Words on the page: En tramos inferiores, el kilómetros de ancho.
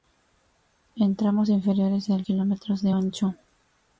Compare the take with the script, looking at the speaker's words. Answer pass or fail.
pass